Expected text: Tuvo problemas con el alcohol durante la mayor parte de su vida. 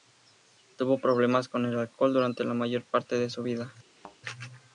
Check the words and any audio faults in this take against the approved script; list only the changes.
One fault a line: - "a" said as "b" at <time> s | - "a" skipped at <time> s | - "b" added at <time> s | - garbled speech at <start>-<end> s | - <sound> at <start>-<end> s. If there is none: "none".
- thud at 3.9-4.2 s